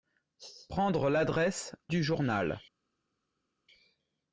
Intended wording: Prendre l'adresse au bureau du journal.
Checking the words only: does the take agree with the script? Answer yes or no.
no